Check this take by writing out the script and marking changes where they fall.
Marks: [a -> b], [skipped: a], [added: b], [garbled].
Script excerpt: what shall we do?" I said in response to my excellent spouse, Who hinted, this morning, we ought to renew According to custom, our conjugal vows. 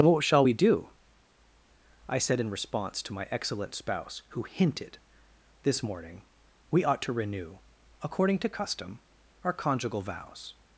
what shall we do?" I said in response to my excellent spouse, Who hinted, this morning, we ought to renew According to custom, our conjugal vows.